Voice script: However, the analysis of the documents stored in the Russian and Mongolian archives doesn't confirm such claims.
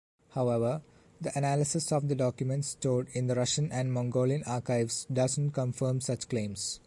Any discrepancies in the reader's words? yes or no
no